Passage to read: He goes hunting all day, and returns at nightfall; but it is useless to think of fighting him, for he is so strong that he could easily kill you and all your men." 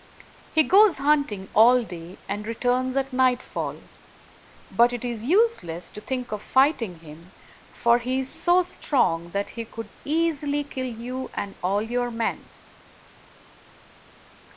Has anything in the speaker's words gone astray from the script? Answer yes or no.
no